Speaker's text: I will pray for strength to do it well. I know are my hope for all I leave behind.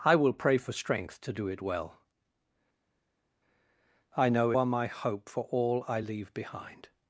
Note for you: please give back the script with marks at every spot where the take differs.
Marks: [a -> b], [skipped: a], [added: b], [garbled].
I will pray for strength to do it well. I know are my hope for all I leave behind.